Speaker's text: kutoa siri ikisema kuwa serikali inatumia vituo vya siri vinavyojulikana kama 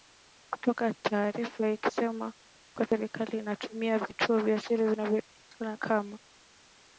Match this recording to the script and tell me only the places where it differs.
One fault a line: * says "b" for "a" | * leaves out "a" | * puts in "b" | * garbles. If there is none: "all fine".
* says "taarifa" for "siri"